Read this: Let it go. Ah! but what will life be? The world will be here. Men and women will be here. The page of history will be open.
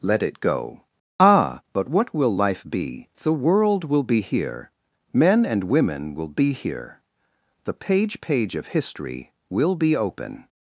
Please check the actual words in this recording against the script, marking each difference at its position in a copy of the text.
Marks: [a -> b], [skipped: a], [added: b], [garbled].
Let it go. Ah! but what will life be? The world will be here. Men and women will be here. The page [added: page] of history will be open.